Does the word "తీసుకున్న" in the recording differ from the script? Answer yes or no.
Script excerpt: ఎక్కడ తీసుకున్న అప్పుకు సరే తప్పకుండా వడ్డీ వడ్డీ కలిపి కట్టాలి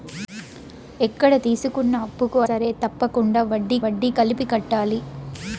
no